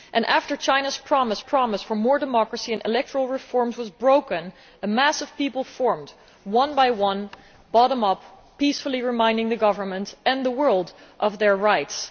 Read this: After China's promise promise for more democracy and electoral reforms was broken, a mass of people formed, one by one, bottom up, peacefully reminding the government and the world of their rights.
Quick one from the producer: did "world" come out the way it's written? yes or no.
yes